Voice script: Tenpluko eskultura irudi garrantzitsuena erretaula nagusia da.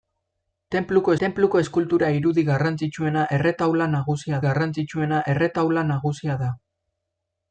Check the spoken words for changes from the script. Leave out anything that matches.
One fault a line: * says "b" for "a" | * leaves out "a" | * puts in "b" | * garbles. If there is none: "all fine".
* puts in "tenpluko"
* puts in "garrantzitsuena erretaula nagusia"